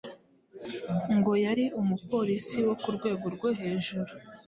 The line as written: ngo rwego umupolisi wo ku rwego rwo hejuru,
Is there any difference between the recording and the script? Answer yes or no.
yes